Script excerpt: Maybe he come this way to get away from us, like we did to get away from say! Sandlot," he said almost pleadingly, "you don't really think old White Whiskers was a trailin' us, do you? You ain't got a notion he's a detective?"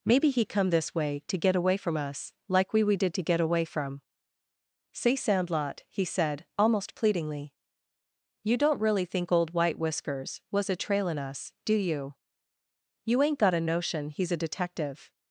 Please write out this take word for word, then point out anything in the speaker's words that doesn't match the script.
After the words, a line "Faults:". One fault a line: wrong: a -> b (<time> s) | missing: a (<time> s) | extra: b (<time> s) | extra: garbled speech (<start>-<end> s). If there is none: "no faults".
Maybe he come this way to get away from us, like we we did to get away from say! Sandlot," he said almost pleadingly, "you don't really think old White Whiskers was a trailin' us, do you? You ain't got a notion he's a detective?"
Faults:
extra: we (2.8 s)